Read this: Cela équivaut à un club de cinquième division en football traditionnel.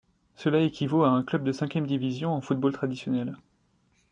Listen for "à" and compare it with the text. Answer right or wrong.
right